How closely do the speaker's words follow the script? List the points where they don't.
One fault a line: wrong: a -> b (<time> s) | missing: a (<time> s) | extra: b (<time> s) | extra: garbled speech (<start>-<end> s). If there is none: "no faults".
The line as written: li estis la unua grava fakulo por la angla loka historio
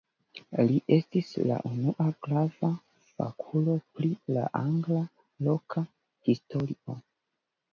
wrong: por -> pri (4.0 s)